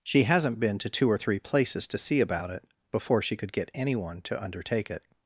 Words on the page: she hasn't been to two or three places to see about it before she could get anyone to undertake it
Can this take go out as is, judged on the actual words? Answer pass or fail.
pass